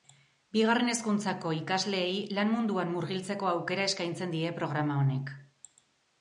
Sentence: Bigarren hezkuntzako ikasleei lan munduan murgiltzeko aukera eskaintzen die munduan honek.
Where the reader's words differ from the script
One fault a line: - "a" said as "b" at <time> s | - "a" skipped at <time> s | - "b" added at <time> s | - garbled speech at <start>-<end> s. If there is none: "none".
- "munduan" said as "programa" at 4.6 s